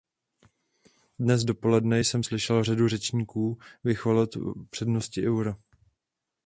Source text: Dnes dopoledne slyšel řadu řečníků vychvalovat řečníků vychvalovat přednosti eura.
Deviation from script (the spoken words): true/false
true